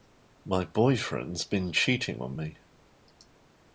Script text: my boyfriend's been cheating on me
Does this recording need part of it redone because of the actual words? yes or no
no